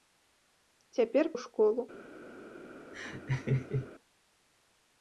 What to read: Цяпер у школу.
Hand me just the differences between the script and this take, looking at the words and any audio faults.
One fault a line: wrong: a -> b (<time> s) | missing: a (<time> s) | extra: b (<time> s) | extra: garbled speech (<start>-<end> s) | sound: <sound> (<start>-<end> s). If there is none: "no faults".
sound: laugh (2.9-3.9 s)